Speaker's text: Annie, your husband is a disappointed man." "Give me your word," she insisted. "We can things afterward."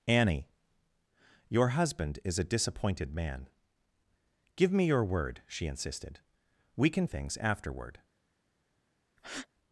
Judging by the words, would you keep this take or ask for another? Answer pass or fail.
pass